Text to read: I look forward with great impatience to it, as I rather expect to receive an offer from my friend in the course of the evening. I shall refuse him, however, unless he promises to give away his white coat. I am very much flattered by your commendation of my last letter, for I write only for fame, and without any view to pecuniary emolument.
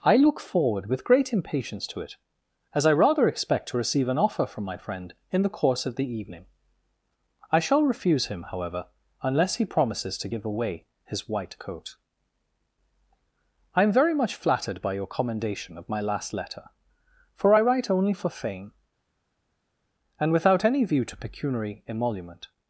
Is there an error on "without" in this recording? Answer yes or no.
no